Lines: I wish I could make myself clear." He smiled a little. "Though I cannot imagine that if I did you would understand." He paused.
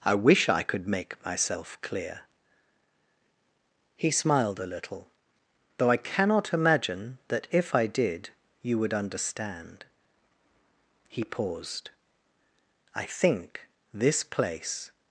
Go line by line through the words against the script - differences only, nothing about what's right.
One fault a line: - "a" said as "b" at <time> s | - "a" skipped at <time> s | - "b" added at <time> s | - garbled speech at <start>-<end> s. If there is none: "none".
- "I think this place" added at 12.9 s